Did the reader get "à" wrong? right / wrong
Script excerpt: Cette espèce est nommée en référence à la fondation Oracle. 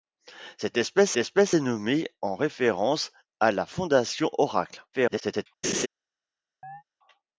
right